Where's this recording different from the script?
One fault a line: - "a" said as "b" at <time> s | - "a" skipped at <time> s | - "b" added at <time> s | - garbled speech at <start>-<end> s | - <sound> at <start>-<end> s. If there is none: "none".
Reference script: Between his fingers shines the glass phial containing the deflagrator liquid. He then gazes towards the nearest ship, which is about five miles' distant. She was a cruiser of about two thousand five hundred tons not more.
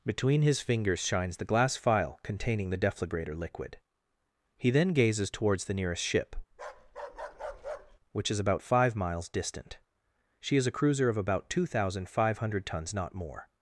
- bark at 6.5-8.0 s
- "was" said as "is" at 10.6 s